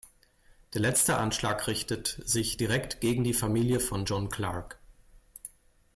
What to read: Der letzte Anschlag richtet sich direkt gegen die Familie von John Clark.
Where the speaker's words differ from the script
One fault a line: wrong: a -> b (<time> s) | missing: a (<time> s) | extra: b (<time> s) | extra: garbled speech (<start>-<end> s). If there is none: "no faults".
no faults